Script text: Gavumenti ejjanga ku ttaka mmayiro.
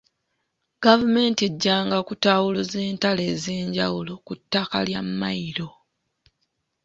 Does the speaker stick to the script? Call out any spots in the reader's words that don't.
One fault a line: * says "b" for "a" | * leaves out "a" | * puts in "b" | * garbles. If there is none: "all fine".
* puts in "kutaawuluza entalo ez'enjawulo"
* puts in "lya"